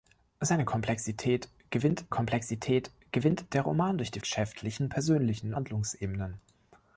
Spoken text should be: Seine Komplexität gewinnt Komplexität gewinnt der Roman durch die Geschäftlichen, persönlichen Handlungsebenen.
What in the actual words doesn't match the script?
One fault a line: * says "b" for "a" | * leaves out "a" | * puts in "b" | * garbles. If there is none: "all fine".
all fine